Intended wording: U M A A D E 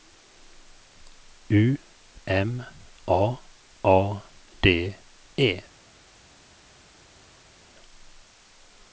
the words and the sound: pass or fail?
pass